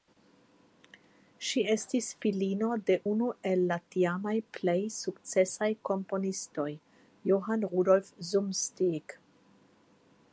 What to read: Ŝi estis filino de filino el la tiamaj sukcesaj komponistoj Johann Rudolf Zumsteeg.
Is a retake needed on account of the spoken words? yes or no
yes